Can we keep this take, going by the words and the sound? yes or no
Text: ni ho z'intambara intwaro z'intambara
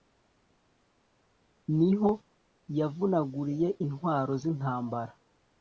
no